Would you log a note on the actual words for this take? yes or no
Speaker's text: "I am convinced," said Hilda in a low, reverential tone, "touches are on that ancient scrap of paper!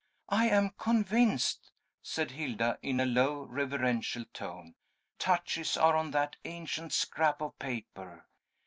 no